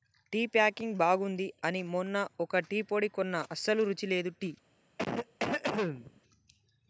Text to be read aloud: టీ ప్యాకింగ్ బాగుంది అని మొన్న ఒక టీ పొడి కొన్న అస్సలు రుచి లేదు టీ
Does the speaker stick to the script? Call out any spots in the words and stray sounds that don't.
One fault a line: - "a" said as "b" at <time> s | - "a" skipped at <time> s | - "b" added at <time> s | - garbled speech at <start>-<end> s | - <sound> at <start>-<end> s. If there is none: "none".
- cough at 5.0-6.2 s